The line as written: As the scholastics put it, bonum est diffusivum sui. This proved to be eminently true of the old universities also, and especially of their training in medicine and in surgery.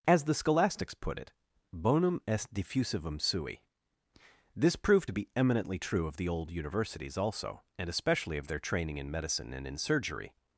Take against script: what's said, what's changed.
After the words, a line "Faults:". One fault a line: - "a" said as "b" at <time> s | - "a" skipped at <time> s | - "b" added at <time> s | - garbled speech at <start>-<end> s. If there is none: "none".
As the scholastics put it, bonum est diffusivum sui. This proved to be eminently true of the old universities also, and especially of their training in medicine and in surgery.
Faults:
none